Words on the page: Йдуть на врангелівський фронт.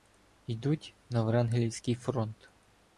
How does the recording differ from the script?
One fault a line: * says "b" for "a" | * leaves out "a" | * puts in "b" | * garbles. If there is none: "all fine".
all fine